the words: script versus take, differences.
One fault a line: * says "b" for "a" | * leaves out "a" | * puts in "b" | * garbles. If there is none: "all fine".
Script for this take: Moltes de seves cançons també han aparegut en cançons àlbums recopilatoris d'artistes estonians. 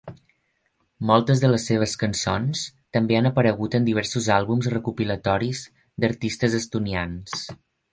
* puts in "les"
* says "diversos" for "cançons"